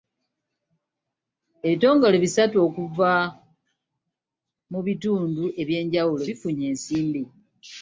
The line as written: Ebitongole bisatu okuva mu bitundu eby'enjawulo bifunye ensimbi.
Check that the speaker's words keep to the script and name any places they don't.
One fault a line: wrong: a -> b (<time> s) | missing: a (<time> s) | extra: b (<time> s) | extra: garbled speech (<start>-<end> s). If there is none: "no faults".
no faults